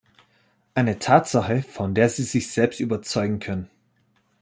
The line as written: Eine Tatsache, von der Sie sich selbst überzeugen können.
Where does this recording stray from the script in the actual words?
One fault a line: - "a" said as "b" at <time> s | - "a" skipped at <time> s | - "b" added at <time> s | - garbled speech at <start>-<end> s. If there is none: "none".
none